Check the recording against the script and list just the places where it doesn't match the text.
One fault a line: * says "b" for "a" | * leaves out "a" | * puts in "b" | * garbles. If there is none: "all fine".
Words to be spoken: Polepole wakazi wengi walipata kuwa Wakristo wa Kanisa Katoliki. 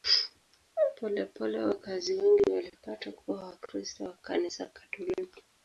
all fine